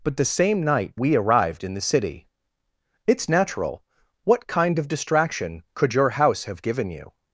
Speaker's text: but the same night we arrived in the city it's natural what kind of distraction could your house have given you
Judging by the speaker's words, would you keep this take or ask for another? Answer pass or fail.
pass